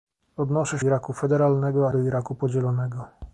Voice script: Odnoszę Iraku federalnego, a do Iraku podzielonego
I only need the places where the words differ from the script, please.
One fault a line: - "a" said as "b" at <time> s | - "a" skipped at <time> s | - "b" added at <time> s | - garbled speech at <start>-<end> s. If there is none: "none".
none